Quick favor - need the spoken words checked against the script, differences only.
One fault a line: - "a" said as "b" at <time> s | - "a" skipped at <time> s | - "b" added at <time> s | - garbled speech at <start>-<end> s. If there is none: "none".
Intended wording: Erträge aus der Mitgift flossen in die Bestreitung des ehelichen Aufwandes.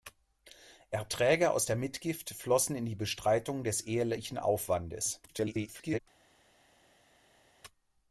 - garbled speech at 5.3-6.0 s